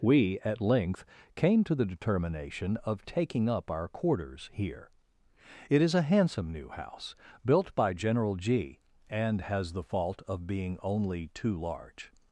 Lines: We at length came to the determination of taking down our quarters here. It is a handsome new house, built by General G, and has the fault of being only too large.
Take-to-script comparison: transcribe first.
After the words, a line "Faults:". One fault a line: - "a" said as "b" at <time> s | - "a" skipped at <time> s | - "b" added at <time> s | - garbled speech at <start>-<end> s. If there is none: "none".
We at length came to the determination of taking up our quarters here. It is a handsome new house, built by General G, and has the fault of being only too large.
Faults:
- "down" said as "up" at 3.5 s